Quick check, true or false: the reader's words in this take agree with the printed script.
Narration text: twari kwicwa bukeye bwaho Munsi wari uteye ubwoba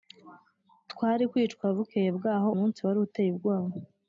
true